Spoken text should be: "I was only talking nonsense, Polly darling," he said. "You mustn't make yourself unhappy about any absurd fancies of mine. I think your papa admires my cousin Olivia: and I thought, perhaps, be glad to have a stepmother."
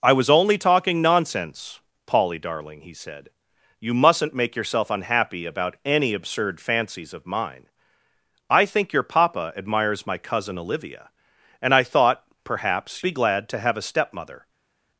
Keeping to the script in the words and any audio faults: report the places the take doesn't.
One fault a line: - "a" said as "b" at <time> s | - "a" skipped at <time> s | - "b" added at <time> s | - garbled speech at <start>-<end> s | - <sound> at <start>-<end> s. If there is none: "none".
none